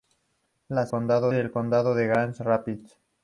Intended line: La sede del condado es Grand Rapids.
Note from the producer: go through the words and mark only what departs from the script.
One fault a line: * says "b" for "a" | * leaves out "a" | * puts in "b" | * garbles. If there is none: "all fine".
* says "condado" for "sede"